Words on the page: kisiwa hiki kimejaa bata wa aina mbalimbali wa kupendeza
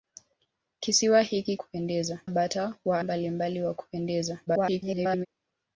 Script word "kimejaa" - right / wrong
wrong